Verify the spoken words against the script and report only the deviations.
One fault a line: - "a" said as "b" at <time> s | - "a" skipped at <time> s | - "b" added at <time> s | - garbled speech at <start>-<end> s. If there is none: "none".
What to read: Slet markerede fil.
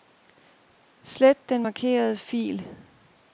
- "den" added at 1.5 s